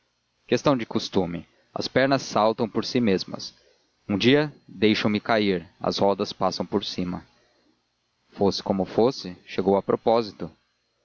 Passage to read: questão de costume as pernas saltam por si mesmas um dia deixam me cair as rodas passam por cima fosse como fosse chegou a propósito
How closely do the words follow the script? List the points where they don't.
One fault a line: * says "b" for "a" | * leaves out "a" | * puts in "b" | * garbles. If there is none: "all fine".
all fine